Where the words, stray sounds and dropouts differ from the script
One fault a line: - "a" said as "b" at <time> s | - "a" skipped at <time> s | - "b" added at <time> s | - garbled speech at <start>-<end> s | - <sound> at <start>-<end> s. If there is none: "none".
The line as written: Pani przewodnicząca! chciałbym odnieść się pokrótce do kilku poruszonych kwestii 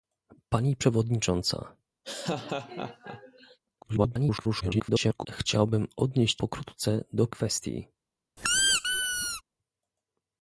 - laugh at 2.0-3.6 s
- garbled speech at 3.8-5.3 s
- "się" skipped at 6.4 s
- "kilku poruszonych" skipped at 7.3 s
- squeak at 8.4-9.4 s